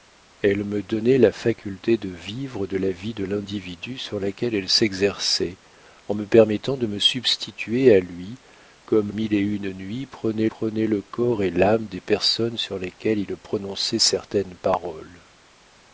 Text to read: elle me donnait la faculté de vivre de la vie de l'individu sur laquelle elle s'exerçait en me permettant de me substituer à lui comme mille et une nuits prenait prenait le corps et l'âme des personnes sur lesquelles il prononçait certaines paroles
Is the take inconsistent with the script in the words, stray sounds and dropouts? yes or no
no